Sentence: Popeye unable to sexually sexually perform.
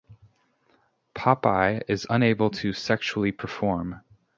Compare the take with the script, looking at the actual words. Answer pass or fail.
fail